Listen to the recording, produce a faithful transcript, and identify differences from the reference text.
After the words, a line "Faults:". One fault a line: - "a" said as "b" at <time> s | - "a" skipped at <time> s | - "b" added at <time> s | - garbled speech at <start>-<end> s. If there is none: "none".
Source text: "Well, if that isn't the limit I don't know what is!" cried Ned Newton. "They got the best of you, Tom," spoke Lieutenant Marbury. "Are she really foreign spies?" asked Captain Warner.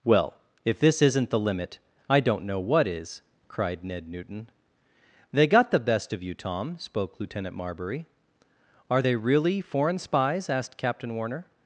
"Well, if this isn't the limit I don't know what is!" cried Ned Newton. "They got the best of you, Tom," spoke Lieutenant Marbury. "Are they really foreign spies?" asked Captain Warner.
Faults:
- "that" said as "this" at 0.8 s
- "she" said as "they" at 9.0 s